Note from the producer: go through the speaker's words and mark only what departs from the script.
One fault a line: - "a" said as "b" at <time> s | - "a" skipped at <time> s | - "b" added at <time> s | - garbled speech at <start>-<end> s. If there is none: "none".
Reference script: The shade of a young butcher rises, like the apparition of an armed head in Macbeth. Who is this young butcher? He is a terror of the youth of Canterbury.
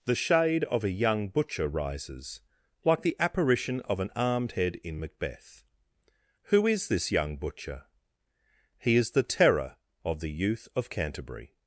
- "a" said as "the" at 9.1 s